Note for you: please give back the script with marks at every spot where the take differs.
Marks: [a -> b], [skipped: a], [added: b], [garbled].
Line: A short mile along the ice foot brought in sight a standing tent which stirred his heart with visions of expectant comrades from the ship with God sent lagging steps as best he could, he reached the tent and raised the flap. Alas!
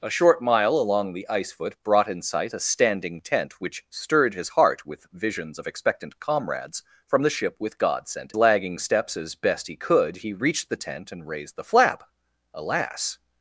A short mile along the ice foot brought in sight a standing tent which stirred his heart with visions of expectant comrades from the ship with God sent lagging steps as best he could, he reached the tent and raised the flap. Alas!